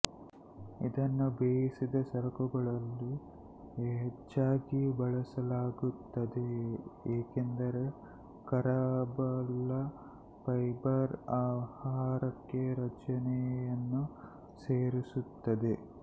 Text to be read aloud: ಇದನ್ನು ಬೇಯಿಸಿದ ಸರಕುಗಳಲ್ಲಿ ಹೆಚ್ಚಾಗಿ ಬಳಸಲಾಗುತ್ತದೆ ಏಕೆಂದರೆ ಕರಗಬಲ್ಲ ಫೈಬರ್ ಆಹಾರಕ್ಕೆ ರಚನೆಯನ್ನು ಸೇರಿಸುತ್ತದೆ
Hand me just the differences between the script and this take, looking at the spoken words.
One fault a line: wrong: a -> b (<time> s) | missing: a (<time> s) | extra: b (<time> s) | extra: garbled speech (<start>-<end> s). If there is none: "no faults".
no faults